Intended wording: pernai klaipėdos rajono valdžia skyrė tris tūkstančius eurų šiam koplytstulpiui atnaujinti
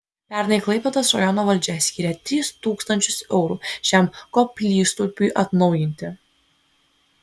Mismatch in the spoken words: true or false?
false